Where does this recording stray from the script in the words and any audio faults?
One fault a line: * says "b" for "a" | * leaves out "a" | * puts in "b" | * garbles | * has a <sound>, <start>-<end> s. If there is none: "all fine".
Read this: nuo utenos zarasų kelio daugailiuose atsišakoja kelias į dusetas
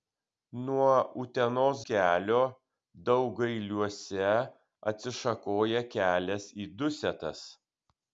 * leaves out "zarasų"